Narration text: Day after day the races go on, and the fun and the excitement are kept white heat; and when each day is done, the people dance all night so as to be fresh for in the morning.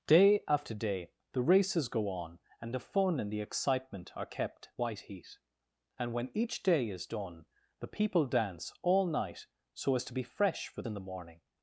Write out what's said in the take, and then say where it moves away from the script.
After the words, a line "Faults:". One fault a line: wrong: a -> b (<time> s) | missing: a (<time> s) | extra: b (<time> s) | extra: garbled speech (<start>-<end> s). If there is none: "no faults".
Day after day the races go on, and the fun and the excitement are kept white heat; and when each day is done, the people dance all night so as to be fresh for in the morning.
Faults:
no faults